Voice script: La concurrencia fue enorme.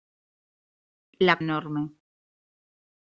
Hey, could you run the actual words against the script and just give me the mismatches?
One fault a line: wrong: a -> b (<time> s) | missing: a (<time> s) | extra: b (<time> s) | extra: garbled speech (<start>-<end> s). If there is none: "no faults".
missing: concurrencia fue (1.4 s)